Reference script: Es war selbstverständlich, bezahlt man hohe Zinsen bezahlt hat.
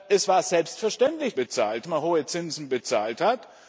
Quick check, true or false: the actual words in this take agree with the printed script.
true